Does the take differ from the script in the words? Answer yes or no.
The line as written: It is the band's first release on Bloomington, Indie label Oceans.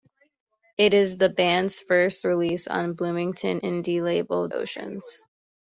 no